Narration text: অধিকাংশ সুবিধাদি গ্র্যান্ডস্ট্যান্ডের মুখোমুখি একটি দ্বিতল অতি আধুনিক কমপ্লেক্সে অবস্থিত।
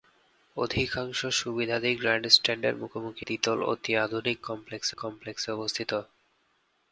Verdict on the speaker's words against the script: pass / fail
fail